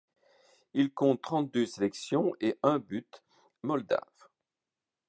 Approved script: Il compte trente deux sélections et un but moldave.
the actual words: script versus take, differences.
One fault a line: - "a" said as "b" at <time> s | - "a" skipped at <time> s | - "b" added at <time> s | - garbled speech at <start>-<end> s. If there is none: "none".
none